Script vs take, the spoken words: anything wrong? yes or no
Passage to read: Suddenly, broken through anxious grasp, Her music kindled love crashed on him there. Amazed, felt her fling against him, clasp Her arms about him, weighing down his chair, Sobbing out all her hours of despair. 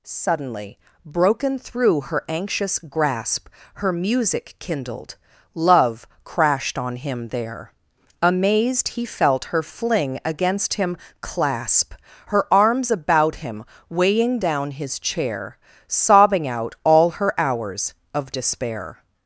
yes